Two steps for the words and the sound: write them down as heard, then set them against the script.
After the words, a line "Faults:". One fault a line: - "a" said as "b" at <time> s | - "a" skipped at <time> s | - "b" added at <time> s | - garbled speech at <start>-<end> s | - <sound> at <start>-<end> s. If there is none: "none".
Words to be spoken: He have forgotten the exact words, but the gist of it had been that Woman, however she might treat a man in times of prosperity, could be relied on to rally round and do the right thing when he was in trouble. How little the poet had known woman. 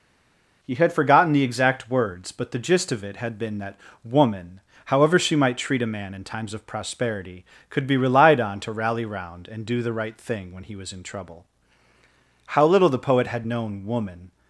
He had forgotten the exact words, but the gist of it had been that Woman, however she might treat a man in times of prosperity, could be relied on to rally round and do the right thing when he was in trouble. How little the poet had known woman.
Faults:
- "have" said as "had" at 0.8 s